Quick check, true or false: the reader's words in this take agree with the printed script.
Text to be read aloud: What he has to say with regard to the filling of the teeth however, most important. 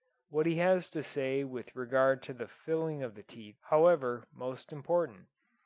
true